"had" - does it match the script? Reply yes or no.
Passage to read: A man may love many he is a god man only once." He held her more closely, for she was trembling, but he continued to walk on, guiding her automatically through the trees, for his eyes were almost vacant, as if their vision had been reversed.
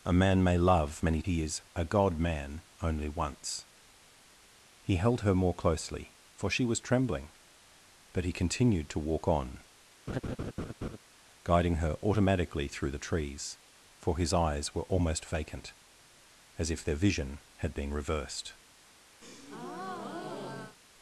yes